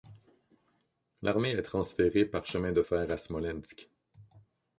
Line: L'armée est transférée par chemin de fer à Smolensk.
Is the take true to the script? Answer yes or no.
yes